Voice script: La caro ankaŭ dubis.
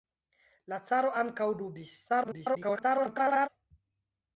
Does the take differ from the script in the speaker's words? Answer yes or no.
yes